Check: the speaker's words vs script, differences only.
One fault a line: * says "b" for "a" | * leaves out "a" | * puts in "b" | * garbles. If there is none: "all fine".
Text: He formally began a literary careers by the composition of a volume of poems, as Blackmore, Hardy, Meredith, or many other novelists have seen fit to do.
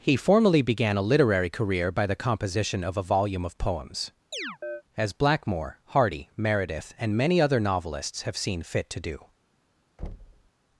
* says "career" for "careers"
* says "and" for "or"